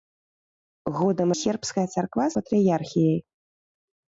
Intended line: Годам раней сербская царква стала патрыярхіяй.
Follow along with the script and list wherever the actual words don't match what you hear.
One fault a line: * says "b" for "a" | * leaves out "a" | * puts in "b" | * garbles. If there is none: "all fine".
* leaves out "раней"
* leaves out "стала"